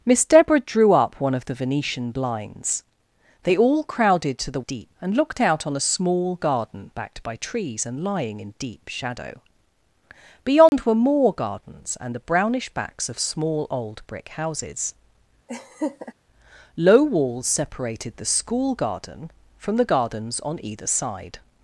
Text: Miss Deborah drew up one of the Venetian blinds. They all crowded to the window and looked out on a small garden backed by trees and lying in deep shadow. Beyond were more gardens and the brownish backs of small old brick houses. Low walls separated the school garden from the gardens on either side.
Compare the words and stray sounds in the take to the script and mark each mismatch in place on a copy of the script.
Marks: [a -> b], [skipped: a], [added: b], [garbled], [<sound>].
Miss Deborah drew up one of the Venetian blinds. They all crowded to the [window -> deep] and looked out on a small garden backed by trees and lying in deep shadow. Beyond [dropout] were more gardens and the brownish backs of small old brick houses. [laugh] Low walls separated the school garden from the gardens on either side.